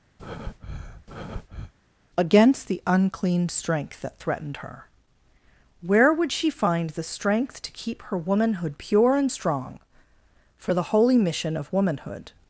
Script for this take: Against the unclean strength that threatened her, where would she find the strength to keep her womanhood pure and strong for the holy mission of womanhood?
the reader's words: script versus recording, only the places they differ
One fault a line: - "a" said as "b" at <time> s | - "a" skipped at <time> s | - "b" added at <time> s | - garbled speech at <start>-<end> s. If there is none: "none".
none